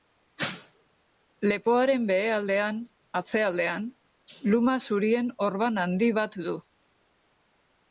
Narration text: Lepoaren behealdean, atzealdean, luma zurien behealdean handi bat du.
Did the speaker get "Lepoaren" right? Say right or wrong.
right